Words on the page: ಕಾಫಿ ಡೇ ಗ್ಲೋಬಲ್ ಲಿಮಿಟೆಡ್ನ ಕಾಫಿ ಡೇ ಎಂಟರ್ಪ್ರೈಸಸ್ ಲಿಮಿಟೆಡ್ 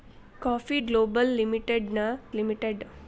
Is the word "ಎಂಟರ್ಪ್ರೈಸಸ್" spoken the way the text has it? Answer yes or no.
no